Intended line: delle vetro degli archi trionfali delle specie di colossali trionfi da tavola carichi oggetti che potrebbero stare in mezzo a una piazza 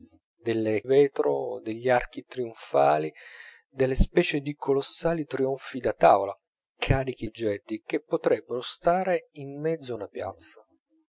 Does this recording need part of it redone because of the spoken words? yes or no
no